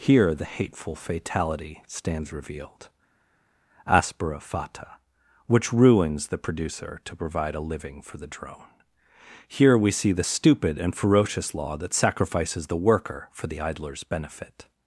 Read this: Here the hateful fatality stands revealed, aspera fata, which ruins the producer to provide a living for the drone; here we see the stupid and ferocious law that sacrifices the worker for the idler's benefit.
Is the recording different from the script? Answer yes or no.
no